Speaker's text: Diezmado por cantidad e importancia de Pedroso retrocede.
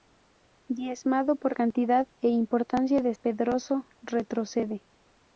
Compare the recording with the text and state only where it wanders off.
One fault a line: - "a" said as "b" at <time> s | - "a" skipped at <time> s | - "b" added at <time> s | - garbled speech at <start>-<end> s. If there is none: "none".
none